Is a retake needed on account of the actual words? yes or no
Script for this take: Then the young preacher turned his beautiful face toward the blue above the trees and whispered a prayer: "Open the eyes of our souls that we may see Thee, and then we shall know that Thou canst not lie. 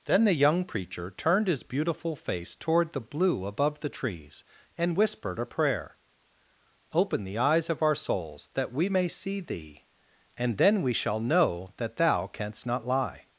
no